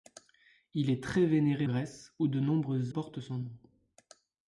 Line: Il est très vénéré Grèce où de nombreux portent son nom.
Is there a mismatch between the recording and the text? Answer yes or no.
no